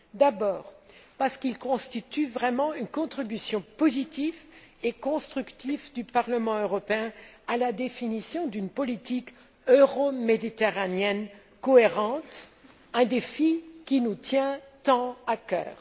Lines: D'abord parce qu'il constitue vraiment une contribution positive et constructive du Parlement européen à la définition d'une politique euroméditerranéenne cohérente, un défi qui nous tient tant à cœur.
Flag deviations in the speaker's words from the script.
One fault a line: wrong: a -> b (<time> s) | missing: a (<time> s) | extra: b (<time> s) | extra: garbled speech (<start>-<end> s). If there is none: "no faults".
no faults